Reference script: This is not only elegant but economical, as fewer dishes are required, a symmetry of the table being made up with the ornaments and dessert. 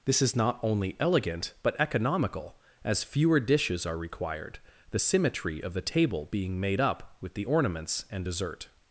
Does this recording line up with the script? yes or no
no